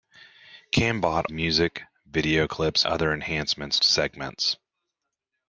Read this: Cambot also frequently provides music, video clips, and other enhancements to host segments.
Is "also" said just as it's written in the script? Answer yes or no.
no